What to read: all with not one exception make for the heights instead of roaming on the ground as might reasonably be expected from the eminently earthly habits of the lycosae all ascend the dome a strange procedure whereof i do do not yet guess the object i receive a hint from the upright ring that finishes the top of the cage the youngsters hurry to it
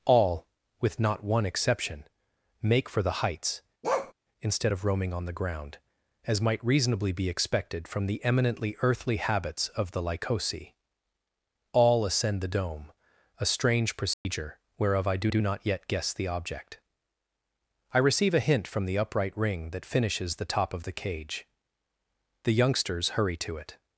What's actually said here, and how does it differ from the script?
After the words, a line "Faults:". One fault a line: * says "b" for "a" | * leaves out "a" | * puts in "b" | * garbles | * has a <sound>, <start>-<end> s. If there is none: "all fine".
all with not one exception make for the heights instead of roaming on the ground as might reasonably be expected from the eminently earthly habits of the lycosae all ascend the dome a strange procedure whereof i do do not yet guess the object i receive a hint from the upright ring that finishes the top of the cage the youngsters hurry to it
Faults:
* has a bark, 3.8-4.1 s
* has a dropout, 14.1-14.3 s